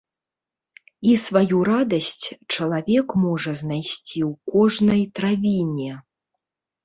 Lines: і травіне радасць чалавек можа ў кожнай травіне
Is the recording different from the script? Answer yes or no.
yes